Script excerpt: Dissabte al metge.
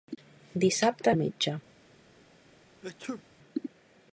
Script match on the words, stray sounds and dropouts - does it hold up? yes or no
no